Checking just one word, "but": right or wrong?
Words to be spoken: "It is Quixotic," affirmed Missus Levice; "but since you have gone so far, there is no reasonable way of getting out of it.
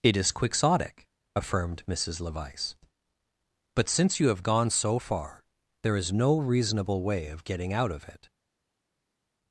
right